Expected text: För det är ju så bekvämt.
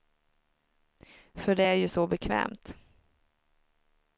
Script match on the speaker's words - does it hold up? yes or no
yes